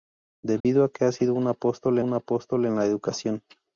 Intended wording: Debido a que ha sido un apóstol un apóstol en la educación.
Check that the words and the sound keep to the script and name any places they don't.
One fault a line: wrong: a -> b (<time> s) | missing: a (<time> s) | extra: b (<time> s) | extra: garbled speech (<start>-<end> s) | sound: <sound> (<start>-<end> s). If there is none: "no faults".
sound: dropout (0.6-0.6 s)